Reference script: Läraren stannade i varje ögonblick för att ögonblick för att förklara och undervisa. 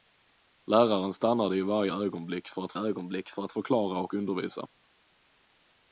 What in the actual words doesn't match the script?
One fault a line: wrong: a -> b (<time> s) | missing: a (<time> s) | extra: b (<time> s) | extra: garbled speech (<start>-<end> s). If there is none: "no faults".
no faults